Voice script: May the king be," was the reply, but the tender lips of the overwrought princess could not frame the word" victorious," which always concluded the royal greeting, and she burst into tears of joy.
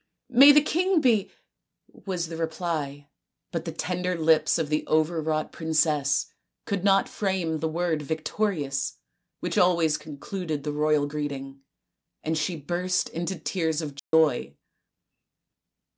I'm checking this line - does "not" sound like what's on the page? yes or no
yes